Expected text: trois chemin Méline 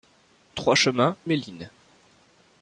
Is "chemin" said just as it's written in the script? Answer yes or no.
yes